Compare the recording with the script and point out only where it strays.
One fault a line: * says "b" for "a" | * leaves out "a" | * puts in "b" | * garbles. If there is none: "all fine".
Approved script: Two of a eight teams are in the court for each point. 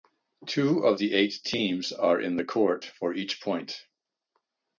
* says "the" for "a"